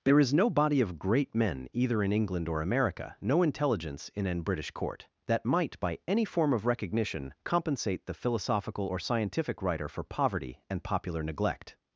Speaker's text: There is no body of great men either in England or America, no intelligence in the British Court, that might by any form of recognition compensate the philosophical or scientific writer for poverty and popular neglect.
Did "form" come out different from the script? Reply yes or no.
no